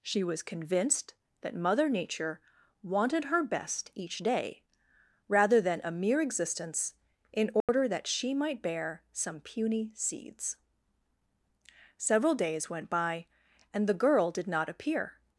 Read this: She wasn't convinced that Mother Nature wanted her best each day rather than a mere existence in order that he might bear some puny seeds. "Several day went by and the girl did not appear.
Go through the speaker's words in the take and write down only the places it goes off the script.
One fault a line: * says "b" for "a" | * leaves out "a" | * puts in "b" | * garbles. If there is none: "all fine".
* says "was" for "wasn't"
* says "she" for "he"
* says "days" for "day"